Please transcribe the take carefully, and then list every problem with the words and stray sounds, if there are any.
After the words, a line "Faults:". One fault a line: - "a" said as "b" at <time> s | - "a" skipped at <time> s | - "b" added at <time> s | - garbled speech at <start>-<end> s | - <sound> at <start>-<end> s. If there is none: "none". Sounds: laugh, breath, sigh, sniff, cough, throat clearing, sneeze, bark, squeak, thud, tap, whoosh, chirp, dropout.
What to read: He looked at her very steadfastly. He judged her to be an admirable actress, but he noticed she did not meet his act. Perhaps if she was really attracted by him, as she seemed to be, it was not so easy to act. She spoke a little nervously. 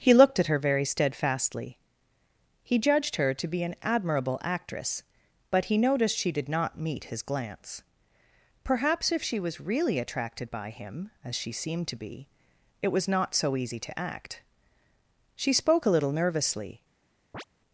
He looked at her very steadfastly. He judged her to be an admirable actress, but he noticed she did not meet his glance. Perhaps if she was really attracted by him, as she seemed to be, it was not so easy to act. She spoke a little nervously.
Faults:
- "act" said as "glance" at 7.2 s
- chirp at 17.3-17.4 s